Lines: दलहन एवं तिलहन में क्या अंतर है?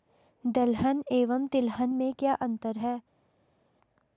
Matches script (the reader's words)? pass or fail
pass